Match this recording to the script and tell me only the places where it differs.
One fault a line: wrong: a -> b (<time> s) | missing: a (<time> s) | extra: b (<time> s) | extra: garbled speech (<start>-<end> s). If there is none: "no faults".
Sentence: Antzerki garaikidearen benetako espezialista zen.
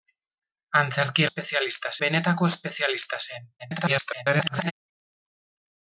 wrong: garaikidearen -> espezialista (1.3 s)
extra: garbled speech (3.6-4.7 s)